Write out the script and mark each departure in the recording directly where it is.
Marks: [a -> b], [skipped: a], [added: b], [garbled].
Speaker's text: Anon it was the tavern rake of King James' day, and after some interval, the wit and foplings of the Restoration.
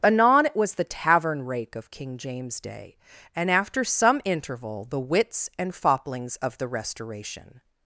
Anon it was the tavern rake of King James' day, and after some interval, the [wit -> wits] and foplings of the Restoration.